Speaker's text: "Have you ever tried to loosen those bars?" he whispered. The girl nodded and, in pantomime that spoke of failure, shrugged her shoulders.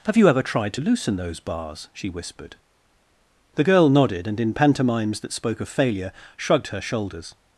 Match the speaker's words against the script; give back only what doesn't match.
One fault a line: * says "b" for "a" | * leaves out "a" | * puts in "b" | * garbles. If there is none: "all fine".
* says "she" for "he"
* says "pantomimes" for "pantomime"